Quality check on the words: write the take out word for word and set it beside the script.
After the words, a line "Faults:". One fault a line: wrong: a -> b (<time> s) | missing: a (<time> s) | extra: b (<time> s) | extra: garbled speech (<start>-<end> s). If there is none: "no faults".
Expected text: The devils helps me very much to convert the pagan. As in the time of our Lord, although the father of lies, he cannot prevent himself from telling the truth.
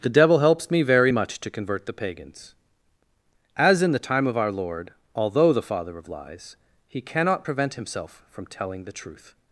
The devil helps me very much to convert the pagans. As in the time of our Lord, although the father of lies, he cannot prevent himself from telling the truth.
Faults:
wrong: devils -> devil (0.1 s)
wrong: pagan -> pagans (1.9 s)